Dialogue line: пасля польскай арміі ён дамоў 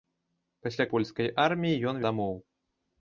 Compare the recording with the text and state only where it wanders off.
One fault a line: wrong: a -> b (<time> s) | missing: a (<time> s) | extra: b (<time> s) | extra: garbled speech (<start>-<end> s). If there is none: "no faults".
no faults